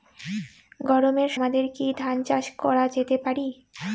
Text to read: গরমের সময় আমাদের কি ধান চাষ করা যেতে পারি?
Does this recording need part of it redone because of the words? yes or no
yes